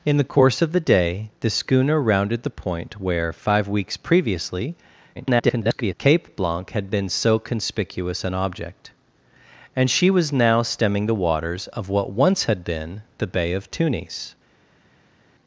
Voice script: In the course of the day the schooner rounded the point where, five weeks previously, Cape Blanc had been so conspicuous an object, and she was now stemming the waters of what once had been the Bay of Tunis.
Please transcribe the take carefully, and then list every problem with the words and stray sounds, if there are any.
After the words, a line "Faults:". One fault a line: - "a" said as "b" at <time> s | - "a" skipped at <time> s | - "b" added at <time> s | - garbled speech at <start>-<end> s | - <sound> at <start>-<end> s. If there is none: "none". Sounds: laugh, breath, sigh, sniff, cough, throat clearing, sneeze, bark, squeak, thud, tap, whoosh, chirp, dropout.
In the course of the day the schooner rounded the point where, five weeks previously, [garbled] Cape Blanc had been so conspicuous an object, and she was now stemming the waters of what once had been the Bay of Tunis.
Faults:
- garbled speech at 5.1-5.9 s